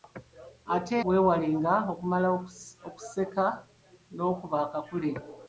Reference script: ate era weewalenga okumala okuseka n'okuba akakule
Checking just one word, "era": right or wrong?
wrong